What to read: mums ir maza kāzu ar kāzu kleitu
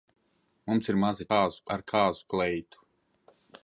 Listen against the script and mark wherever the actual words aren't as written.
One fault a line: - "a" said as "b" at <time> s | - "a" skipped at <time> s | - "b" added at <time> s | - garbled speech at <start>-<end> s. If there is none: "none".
none